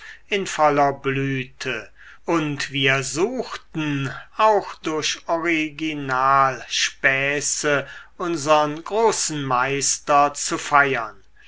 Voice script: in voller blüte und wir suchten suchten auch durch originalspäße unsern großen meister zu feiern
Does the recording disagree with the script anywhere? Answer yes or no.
yes